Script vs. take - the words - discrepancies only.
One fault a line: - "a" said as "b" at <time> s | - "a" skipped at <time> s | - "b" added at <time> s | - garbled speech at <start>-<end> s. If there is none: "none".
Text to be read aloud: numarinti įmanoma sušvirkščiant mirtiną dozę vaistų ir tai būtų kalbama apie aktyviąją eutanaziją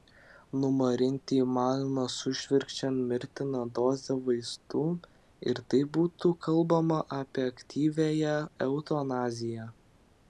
none